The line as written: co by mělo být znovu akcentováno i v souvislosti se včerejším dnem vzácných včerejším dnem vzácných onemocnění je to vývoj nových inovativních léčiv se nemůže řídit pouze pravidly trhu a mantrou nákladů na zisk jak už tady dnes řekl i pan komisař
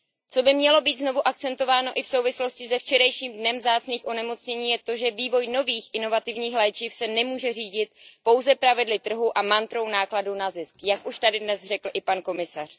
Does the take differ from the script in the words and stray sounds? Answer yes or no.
yes